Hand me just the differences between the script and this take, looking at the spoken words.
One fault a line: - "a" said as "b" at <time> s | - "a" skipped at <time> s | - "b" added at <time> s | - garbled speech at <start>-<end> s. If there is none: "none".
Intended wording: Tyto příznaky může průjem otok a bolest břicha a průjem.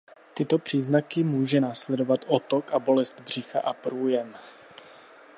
- "průjem" said as "následovat" at 1.6 s